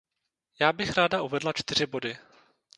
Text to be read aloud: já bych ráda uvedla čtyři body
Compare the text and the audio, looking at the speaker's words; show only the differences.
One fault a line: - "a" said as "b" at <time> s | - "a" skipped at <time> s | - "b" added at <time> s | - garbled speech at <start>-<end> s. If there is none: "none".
none